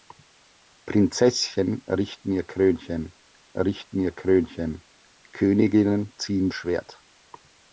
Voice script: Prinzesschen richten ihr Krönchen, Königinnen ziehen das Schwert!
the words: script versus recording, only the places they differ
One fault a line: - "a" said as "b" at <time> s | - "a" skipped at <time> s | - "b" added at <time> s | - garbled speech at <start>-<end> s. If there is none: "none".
- "richten ihr Krönchen" added at 3.5 s
- "das" skipped at 6.5 s